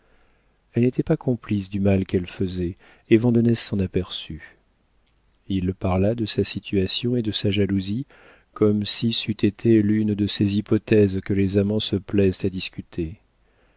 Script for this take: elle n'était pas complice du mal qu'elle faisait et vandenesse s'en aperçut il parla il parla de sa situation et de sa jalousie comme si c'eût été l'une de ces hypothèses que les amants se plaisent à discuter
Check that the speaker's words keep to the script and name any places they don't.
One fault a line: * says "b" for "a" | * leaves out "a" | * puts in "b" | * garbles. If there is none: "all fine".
* leaves out "il parla"